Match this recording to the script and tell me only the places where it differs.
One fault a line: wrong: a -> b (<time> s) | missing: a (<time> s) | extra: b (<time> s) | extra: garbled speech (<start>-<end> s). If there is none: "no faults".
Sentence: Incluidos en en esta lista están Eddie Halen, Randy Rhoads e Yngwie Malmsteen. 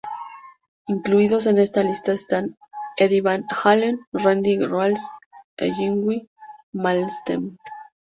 missing: en (1.6 s)
extra: Van (3.2 s)